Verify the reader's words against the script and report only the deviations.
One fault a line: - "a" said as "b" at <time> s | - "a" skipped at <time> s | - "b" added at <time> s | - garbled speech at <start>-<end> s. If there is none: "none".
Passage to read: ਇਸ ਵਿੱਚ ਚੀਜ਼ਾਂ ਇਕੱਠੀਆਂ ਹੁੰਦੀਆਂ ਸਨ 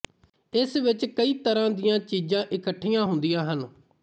- "ਕਈ ਤਰ੍ਹਾਂ ਦੀਆਂ" added at 1.1 s
- "ਸਨ" said as "ਹਨ" at 3.5 s